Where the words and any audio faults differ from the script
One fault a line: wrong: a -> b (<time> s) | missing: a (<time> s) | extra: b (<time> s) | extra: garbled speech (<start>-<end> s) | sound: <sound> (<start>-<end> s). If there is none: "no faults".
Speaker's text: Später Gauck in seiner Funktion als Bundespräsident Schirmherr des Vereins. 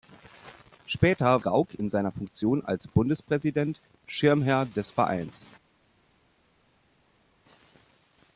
no faults